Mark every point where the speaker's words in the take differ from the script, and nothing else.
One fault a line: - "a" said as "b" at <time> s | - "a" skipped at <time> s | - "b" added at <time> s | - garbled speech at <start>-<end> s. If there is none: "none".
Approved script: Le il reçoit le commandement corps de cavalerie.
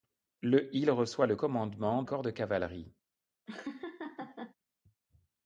none